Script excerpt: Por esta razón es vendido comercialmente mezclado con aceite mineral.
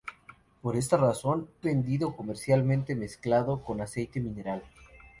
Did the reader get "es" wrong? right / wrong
wrong